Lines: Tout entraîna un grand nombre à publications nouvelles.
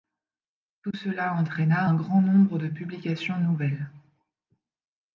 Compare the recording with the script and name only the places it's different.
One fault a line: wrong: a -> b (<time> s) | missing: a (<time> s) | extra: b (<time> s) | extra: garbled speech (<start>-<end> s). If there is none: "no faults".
extra: cela (0.9 s)
wrong: à -> de (2.6 s)